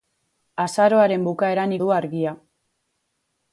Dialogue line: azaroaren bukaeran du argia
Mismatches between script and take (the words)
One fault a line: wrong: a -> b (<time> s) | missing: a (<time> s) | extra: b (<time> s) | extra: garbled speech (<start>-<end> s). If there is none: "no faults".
no faults